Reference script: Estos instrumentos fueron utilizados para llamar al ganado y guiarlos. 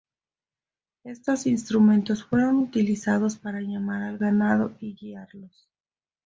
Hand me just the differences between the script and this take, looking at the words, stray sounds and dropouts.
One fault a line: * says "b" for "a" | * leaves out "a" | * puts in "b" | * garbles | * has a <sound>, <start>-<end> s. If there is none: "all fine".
all fine